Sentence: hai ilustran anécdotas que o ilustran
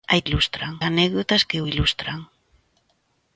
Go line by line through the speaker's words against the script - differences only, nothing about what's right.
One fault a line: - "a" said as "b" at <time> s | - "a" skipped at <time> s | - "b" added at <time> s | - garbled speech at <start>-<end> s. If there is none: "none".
none